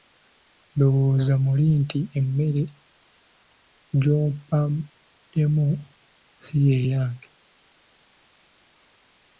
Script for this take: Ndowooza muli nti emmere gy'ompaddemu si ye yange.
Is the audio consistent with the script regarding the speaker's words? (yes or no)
yes